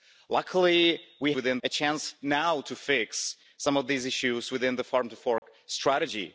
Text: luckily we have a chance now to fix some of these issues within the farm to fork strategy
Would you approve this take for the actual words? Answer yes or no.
no